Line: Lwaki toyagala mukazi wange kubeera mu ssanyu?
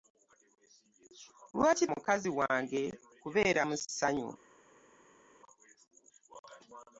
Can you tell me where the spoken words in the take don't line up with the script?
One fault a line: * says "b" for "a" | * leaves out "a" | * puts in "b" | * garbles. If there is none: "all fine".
* leaves out "toyagala"